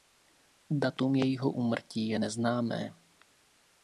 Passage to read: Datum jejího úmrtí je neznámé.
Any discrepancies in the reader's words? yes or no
no